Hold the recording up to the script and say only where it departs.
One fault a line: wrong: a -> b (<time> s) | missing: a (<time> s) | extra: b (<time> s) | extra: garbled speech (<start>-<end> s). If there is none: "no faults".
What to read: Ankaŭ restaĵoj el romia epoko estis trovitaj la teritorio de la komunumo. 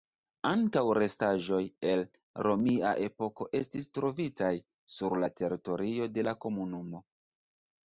extra: sur (5.0 s)